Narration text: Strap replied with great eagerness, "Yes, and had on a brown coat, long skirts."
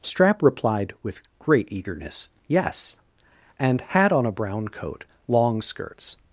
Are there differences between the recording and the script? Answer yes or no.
no